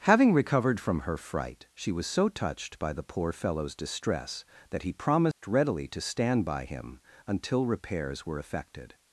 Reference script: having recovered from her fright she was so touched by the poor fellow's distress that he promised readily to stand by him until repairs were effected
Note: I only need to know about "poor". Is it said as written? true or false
true